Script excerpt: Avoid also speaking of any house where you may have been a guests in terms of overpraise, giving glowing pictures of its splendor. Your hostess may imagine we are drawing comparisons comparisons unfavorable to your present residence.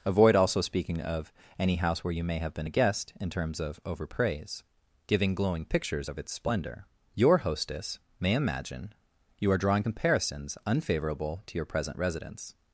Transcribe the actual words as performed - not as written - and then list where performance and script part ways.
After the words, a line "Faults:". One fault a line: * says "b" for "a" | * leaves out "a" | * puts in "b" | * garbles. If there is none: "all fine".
Avoid also speaking of any house where you may have been a guest in terms of overpraise, giving glowing pictures of its splendor. Your hostess may imagine you are drawing comparisons unfavorable to your present residence.
Faults:
* says "guest" for "guests"
* says "you" for "we"
* leaves out "comparisons"